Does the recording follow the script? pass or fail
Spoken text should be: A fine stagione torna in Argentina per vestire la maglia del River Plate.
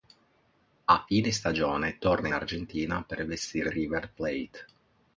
fail